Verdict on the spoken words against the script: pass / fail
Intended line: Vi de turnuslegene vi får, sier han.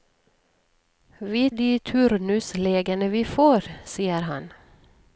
pass